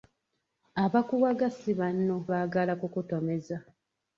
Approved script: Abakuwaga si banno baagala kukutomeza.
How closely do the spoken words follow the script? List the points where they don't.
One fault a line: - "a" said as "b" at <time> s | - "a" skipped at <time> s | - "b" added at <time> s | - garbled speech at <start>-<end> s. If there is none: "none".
none